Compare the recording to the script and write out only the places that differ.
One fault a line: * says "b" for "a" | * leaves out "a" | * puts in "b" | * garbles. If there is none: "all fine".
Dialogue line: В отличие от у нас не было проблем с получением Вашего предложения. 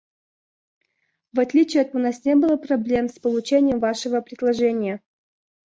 all fine